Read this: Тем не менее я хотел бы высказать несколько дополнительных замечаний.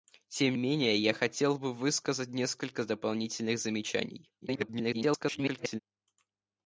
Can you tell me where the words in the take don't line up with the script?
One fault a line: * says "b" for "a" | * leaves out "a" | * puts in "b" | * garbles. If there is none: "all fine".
* leaves out "не"
* garbles